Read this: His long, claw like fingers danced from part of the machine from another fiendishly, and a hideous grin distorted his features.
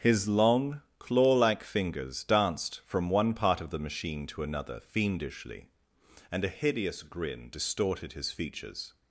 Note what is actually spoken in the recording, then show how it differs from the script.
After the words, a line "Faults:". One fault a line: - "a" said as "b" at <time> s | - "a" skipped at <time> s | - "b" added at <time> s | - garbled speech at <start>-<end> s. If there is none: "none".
His long, claw like fingers danced from one part of the machine to another fiendishly, and a hideous grin distorted his features.
Faults:
- "one" added at 3.1 s
- "from" said as "to" at 4.3 s